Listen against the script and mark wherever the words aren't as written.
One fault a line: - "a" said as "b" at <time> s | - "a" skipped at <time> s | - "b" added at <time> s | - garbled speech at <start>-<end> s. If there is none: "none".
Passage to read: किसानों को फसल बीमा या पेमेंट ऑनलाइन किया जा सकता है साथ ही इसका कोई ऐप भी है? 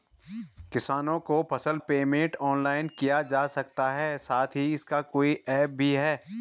- "बीमा या" skipped at 1.8 s